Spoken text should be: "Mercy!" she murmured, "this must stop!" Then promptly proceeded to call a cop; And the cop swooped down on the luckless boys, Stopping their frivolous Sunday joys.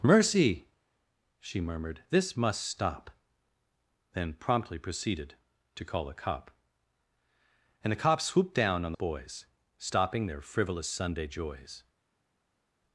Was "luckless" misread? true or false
true